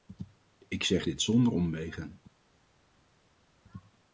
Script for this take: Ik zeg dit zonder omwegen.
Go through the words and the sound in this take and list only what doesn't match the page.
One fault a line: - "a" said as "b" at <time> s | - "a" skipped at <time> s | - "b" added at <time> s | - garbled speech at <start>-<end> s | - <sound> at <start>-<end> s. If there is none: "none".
none